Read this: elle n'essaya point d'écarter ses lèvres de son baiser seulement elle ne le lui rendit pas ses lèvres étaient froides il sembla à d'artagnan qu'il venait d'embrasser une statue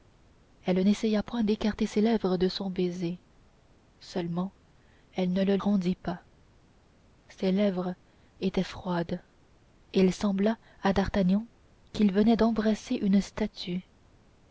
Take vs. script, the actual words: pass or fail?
fail